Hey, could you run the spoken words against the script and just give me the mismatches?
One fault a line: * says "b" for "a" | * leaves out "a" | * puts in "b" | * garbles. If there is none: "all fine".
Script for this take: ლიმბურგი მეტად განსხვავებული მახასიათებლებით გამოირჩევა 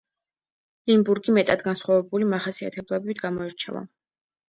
all fine